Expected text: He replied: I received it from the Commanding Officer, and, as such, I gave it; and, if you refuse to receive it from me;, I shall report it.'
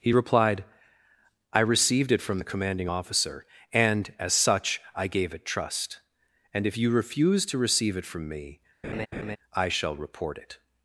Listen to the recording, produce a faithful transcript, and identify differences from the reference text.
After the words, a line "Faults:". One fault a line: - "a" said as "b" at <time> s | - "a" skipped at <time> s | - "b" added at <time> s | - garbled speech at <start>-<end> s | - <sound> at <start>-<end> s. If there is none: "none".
He replied: I received it from the Commanding Officer, and, as such, I gave it; trust and, if you refuse to receive it from me;, I shall report it.'
Faults:
- "trust" added at 5.5 s
- laugh at 8.8-9.4 s